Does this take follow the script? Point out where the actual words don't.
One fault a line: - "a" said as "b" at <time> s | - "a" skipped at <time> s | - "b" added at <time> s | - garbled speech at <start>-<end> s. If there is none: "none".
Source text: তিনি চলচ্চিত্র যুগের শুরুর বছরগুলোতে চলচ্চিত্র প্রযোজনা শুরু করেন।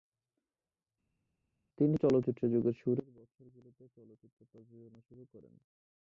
none